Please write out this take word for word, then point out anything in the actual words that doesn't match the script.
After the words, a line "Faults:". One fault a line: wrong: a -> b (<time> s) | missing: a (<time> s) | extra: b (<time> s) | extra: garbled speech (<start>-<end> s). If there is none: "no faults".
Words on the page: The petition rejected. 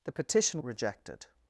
The petition rejected.
Faults:
no faults